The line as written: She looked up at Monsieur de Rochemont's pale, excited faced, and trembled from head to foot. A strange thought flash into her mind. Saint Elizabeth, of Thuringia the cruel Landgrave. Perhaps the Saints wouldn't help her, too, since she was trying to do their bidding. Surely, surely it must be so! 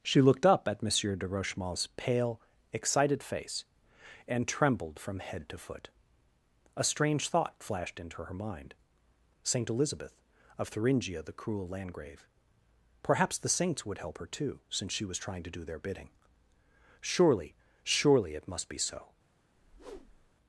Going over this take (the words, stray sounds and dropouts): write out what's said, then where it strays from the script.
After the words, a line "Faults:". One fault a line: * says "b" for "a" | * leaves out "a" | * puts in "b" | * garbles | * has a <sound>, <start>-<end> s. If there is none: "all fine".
She looked up at Monsieur de Rochemont's pale, excited face, and trembled from head to foot. A strange thought flashed into her mind. Saint Elizabeth, of Thuringia the cruel Landgrave. Perhaps the Saints would help her, too, since she was trying to do their bidding. Surely, surely it must be so!
Faults:
* says "face" for "faced"
* says "flashed" for "flash"
* says "would" for "wouldn't"
* has a whoosh, 19.5-20.4 s